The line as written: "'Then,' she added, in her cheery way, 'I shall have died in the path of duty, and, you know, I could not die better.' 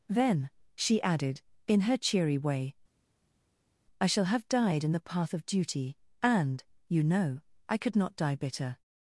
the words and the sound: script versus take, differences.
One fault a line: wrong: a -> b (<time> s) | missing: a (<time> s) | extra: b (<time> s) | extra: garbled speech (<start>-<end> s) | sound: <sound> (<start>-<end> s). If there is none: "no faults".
wrong: better -> bitter (8.4 s)